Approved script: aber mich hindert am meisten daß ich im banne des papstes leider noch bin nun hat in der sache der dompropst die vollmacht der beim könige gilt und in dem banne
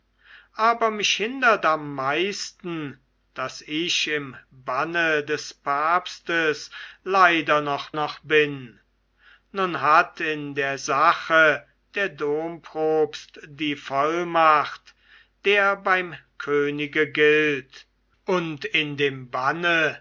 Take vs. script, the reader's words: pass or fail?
fail